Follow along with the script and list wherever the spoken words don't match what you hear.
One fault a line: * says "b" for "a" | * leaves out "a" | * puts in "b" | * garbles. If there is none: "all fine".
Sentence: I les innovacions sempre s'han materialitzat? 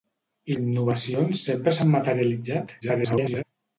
* leaves out "les"
* garbles